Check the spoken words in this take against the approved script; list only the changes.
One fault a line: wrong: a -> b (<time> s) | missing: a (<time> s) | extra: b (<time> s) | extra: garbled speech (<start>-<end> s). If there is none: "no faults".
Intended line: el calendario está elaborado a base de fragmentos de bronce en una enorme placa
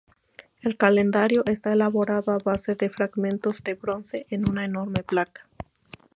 no faults